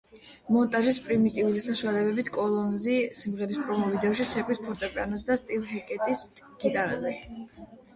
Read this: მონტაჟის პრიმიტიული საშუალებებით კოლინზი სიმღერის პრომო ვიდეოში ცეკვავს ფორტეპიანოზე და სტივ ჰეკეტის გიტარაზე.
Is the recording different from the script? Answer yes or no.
no